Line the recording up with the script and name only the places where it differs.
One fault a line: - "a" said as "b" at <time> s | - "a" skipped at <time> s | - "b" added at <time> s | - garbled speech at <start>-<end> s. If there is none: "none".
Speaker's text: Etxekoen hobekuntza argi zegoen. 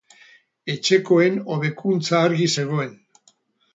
none